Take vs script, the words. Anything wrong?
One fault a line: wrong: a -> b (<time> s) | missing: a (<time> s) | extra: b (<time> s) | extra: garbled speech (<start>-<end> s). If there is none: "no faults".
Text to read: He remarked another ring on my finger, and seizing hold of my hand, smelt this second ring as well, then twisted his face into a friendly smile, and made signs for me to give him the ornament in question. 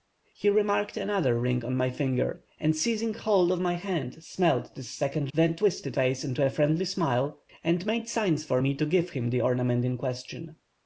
missing: ring as well (5.3 s)
missing: his (6.0 s)